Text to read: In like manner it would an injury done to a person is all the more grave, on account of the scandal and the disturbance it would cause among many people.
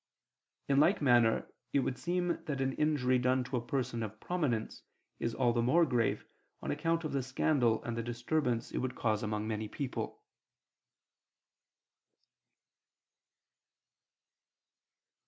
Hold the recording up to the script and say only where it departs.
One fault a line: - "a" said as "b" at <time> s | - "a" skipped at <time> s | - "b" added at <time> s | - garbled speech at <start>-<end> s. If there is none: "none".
- "seem that" added at 1.9 s
- "of prominence" added at 4.0 s